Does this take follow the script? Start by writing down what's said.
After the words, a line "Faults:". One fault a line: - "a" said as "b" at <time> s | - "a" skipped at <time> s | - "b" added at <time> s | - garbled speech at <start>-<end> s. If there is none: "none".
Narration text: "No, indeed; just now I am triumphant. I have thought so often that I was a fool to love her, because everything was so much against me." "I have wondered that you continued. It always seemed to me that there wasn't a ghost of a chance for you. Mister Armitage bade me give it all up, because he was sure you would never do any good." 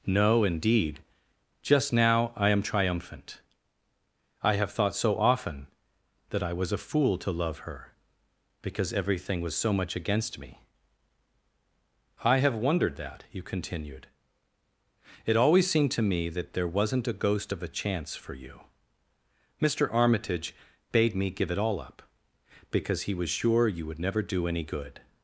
"No, indeed; just now I am triumphant. I have thought so often that I was a fool to love her, because everything was so much against me." "I have wondered that you continued. It always seemed to me that there wasn't a ghost of a chance for you. Mister Armitage bade me give it all up, because he was sure you would never do any good."
Faults:
none